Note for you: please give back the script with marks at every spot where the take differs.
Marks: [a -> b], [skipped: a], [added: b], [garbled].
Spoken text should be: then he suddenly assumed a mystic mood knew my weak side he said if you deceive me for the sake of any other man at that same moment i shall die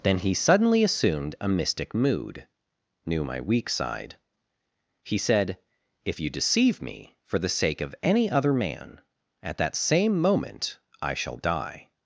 then he suddenly assumed a mystic mood knew my weak side he said if you deceive me for the sake of any other man at that same moment i shall die